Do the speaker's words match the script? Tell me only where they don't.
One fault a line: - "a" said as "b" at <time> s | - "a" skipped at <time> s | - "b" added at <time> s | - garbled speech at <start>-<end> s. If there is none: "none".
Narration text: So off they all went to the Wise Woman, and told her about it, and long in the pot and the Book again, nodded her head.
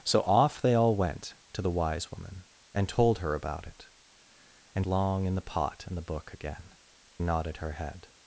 none